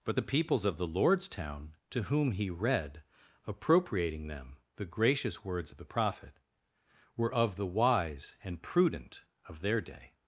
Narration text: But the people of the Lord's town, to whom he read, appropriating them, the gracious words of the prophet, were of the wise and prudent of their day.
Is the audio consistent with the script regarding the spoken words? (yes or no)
no